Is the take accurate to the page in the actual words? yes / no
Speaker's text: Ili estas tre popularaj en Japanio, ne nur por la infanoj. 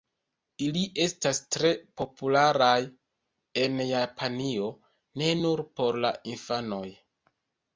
yes